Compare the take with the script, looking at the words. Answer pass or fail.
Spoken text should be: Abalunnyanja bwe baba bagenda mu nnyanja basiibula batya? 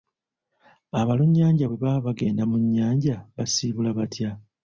pass